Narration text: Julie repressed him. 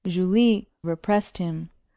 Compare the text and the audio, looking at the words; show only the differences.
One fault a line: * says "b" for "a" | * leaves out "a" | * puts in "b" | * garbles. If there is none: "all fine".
all fine